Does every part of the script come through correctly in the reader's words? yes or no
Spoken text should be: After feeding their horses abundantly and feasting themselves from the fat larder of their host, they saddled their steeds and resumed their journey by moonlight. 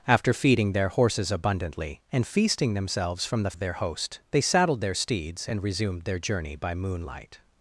no